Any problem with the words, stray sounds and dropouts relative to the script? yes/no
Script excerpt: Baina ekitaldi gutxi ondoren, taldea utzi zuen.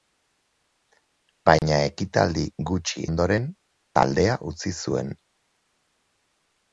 yes